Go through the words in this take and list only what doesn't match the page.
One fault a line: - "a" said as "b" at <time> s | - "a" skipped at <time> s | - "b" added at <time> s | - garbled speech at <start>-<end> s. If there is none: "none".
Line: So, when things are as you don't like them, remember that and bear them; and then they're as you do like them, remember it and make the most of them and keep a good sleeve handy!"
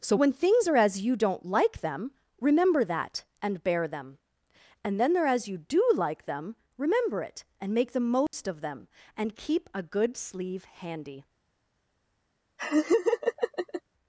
none